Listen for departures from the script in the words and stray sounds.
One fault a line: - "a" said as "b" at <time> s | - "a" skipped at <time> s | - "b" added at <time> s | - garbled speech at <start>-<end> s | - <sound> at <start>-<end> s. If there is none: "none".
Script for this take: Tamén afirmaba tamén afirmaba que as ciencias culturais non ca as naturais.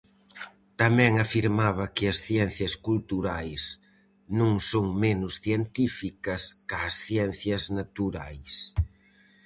- "tamén afirmaba" skipped at 1.9 s
- "son menos científicas" added at 4.7 s
- "ciencias" added at 7.1 s